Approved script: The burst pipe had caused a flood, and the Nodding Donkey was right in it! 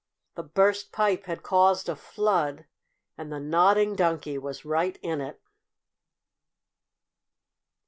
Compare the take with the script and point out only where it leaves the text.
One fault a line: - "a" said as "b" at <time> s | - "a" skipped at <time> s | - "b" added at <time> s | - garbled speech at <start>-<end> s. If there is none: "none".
none